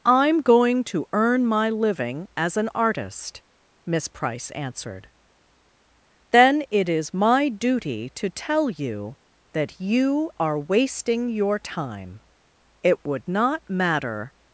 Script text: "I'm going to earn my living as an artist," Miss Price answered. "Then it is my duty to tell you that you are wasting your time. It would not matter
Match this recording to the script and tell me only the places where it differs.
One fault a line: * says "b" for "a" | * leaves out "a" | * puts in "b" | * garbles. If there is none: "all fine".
all fine